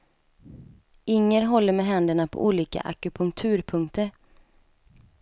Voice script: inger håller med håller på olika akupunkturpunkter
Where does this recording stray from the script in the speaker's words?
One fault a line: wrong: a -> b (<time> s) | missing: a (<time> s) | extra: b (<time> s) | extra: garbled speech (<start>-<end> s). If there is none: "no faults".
wrong: håller -> händerna (1.9 s)